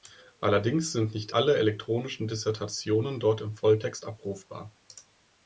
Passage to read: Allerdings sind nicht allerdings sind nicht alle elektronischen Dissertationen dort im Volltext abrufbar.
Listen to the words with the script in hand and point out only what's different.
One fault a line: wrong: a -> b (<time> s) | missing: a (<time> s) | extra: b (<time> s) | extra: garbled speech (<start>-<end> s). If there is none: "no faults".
missing: allerdings sind nicht (1.4 s)